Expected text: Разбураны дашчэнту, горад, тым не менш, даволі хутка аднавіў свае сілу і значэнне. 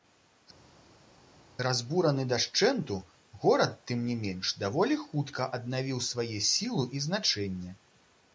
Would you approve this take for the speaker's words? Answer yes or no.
yes